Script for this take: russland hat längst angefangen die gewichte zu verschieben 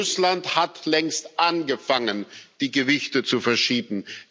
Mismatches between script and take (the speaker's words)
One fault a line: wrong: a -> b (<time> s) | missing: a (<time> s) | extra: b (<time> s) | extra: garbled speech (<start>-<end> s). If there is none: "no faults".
no faults